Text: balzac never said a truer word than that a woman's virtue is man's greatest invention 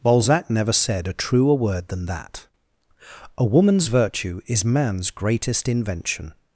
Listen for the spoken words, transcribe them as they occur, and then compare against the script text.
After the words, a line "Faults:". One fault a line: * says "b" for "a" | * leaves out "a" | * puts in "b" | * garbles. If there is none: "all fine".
balzac never said a truer word than that a woman's virtue is man's greatest invention
Faults:
all fine